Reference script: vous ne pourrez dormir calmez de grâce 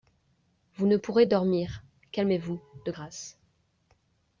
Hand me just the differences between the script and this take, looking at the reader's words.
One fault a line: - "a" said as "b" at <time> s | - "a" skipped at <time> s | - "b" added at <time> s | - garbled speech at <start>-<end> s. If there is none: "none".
- "vous" added at 2.4 s